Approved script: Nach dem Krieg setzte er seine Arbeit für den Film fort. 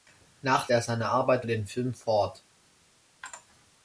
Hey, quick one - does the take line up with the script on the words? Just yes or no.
no